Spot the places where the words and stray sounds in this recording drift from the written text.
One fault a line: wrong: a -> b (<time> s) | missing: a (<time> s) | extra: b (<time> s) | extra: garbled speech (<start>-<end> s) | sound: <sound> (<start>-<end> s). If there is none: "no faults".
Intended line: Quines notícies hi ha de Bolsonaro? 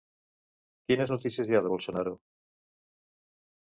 no faults